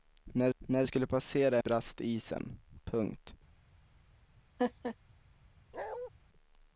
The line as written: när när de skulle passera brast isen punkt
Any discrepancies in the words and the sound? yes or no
yes